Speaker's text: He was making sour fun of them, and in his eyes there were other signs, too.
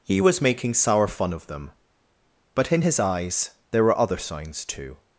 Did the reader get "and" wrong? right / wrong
wrong